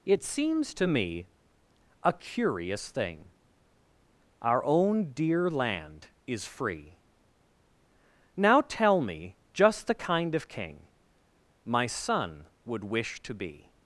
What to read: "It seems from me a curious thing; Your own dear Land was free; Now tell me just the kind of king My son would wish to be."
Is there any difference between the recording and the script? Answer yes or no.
yes